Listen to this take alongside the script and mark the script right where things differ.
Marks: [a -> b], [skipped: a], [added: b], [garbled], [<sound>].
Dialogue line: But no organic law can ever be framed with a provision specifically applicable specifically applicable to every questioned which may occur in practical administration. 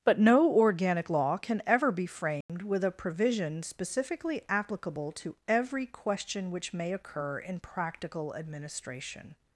But no organic law can ever be framed [dropout] with a provision specifically applicable [skipped: specifically applicable] to every [questioned -> question] which may occur in practical administration.